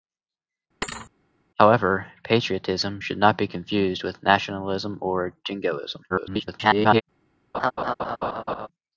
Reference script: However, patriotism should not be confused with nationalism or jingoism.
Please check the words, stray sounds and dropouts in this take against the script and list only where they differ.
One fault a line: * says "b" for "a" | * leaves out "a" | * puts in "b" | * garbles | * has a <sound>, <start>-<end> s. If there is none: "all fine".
* has a thud, 0.8-1.1 s
* garbles
* has a laugh, 7.5-8.7 s